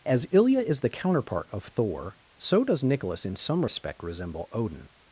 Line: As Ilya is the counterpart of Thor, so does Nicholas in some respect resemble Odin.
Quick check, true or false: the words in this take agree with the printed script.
true